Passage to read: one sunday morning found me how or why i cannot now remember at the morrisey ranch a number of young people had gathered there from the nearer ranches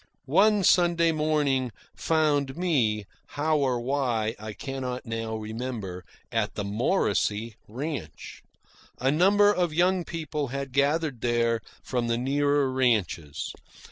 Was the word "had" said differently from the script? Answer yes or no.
no